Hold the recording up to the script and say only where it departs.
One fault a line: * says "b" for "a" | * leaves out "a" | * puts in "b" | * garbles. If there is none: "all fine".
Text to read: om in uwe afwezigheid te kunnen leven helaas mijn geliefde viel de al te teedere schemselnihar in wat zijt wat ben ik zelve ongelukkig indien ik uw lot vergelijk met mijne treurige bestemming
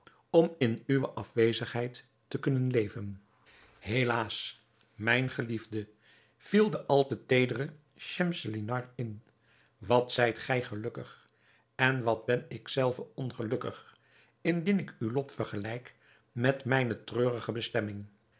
* puts in "gij gelukkig en"